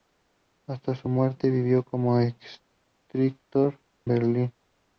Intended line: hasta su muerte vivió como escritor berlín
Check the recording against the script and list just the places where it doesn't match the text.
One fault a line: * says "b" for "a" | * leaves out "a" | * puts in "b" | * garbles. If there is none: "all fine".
all fine